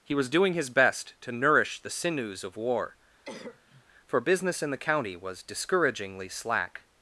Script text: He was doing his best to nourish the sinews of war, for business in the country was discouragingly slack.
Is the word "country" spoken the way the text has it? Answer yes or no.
no